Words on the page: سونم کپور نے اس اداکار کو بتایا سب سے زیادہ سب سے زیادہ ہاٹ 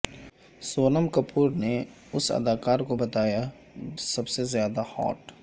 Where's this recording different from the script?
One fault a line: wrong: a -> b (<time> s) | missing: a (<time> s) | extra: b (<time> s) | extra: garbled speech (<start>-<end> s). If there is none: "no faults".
missing: سب سے زیادہ (4.8 s)